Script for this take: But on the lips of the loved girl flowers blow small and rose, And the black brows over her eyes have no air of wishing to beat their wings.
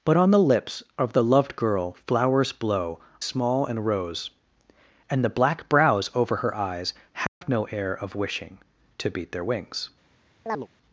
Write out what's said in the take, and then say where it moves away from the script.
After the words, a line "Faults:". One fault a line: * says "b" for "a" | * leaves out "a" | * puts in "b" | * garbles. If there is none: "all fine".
But on the lips of the loved girl flowers blow small and rose, And the black brows over her eyes have no air of wishing to beat their wings.
Faults:
all fine